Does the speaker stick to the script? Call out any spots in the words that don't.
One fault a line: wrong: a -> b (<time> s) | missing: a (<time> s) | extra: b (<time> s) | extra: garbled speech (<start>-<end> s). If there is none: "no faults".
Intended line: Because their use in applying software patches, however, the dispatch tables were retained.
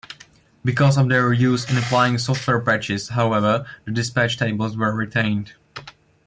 extra: of (1.0 s)